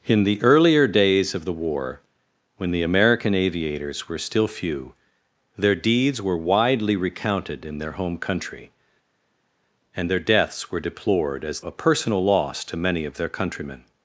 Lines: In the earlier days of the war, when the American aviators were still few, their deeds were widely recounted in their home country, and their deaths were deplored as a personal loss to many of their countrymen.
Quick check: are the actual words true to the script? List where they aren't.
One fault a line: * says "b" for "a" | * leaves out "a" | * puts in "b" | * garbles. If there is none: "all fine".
all fine